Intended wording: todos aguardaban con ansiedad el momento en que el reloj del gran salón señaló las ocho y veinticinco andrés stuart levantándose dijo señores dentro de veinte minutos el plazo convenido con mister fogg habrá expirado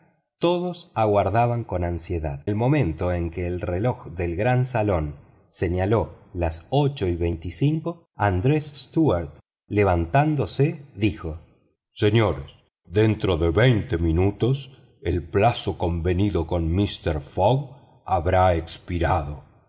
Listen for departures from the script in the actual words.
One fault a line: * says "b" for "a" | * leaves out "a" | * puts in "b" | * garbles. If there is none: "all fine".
all fine